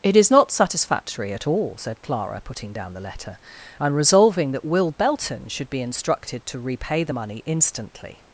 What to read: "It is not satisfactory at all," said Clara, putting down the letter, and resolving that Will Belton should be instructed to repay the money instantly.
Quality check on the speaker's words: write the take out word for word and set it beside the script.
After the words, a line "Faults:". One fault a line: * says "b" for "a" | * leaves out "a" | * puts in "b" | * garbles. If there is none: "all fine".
"It is not satisfactory at all," said Clara, putting down the letter, and resolving that Will Belton should be instructed to repay the money instantly.
Faults:
all fine